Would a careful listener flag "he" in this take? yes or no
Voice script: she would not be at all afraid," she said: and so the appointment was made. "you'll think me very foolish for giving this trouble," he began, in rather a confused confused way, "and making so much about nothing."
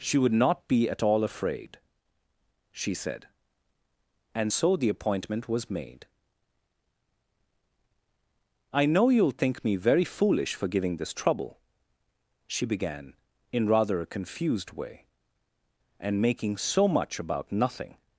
yes